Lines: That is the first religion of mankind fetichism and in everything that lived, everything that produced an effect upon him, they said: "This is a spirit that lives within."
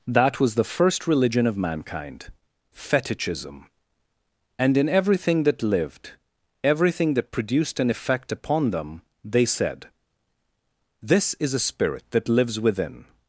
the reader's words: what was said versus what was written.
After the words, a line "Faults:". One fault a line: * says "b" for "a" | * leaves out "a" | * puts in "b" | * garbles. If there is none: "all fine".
That was the first religion of mankind fetichism and in everything that lived, everything that produced an effect upon them, they said: "This is a spirit that lives within."
Faults:
* says "was" for "is"
* says "them" for "him"